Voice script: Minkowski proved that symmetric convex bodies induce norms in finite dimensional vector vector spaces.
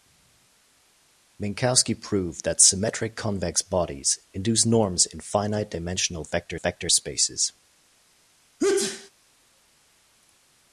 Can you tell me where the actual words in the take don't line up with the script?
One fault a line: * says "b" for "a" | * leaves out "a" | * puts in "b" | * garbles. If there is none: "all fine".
all fine